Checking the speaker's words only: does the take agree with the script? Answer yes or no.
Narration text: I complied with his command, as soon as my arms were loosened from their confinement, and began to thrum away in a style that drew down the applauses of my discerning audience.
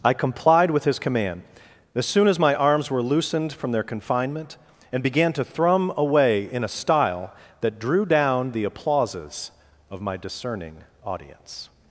yes